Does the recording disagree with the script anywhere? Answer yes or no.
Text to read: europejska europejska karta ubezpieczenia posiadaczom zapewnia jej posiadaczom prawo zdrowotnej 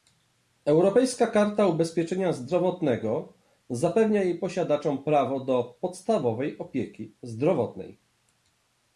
yes